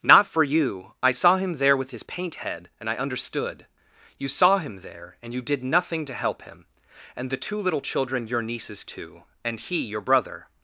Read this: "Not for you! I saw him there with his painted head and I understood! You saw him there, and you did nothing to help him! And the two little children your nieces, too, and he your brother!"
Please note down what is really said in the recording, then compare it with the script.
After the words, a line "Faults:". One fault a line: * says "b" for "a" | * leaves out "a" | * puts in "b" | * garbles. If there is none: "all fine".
"Not for you! I saw him there with his paint head and I understood! You saw him there, and you did nothing to help him! And the two little children your nieces, too, and he your brother!"
Faults:
* says "paint" for "painted"